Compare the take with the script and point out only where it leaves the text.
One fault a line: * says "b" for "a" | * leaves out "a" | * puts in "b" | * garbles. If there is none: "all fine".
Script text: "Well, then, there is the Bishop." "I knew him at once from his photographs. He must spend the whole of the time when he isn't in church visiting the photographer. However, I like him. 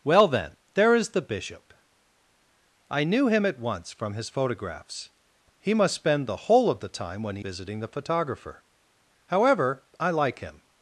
* leaves out "isn't in church"